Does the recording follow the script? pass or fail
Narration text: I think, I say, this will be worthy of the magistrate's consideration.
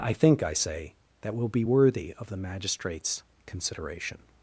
fail